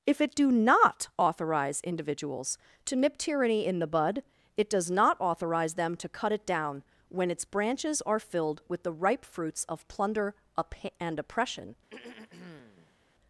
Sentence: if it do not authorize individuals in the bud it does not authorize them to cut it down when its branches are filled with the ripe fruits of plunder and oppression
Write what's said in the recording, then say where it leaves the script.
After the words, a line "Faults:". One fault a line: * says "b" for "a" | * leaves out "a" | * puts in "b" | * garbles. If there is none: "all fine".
if it do not authorize individuals to nip tyranny in the bud it does not authorize them to cut it down when its branches are filled with the ripe fruits of plunder and oppression
Faults:
* puts in "to nip tyranny"